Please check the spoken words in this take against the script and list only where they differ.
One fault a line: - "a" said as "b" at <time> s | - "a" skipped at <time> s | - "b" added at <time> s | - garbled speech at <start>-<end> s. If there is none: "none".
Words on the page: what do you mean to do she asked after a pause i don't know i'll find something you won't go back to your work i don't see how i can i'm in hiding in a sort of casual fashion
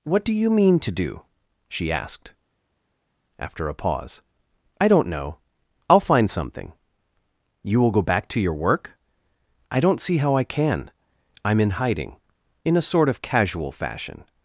- "won't" said as "will" at 7.8 s